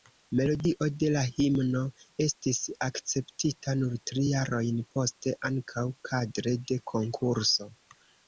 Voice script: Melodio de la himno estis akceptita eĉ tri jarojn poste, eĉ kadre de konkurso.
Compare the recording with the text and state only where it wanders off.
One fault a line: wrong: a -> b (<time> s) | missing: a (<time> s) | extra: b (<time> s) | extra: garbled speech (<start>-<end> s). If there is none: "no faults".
wrong: eĉ -> nur (3.8 s)
wrong: eĉ -> ankaŭ (5.5 s)